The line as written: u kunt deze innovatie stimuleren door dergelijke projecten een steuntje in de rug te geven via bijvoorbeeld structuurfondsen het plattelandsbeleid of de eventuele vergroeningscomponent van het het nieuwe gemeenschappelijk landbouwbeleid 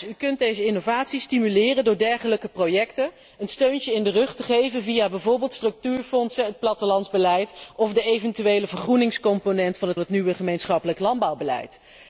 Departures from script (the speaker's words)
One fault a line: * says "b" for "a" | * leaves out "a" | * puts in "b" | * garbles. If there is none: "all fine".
all fine